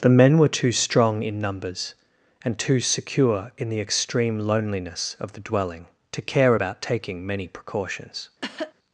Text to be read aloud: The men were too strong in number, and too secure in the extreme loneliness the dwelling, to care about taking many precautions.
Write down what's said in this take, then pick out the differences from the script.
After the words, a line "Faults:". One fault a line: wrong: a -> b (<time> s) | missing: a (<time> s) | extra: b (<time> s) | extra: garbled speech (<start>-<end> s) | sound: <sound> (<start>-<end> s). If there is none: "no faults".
The men were too strong in numbers, and too secure in the extreme loneliness of the dwelling, to care about taking many precautions.
Faults:
wrong: number -> numbers (1.4 s)
extra: of (5.2 s)
sound: cough (8.4-8.7 s)